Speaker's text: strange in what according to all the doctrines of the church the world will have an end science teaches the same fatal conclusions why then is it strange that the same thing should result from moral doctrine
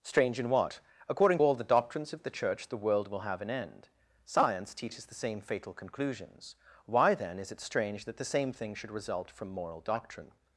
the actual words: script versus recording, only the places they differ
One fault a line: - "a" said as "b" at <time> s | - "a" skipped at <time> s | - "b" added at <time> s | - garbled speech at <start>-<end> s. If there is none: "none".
- "to" skipped at 1.4 s